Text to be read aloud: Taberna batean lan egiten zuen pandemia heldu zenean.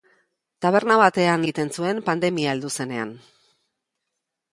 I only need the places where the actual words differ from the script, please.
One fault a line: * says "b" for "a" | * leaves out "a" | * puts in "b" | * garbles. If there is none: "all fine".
* leaves out "lan"